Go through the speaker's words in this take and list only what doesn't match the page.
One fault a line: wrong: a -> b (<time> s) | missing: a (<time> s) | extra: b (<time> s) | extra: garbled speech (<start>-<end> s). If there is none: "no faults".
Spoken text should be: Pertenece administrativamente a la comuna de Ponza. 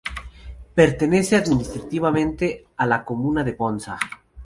no faults